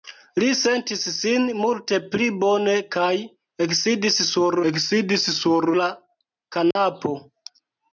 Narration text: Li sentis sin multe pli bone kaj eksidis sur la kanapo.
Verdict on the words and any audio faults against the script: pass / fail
fail